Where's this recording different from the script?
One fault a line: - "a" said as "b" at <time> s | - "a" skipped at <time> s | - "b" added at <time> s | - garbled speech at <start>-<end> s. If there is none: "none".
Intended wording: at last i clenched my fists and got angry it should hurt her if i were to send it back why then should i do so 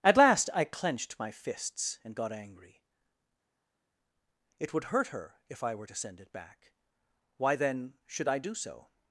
- "should" said as "would" at 4.7 s